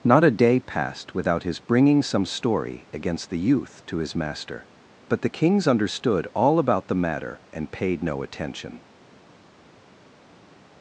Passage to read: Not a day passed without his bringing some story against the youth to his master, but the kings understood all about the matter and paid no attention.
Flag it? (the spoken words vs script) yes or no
no